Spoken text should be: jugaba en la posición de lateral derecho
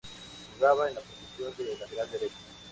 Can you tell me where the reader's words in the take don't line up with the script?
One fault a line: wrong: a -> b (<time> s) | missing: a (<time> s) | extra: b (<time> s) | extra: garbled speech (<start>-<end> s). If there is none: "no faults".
no faults